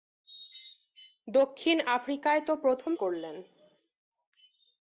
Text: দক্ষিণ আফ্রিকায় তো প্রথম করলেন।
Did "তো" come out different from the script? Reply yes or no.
no